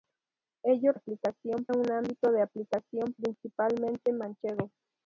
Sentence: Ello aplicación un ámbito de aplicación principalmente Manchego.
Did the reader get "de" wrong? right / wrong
right